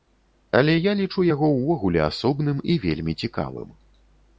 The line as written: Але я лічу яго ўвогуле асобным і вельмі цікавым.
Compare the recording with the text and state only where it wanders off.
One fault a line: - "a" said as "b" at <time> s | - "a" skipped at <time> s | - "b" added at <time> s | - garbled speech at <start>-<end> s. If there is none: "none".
none